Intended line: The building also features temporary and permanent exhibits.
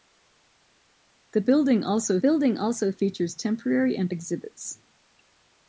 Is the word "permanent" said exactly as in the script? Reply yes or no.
no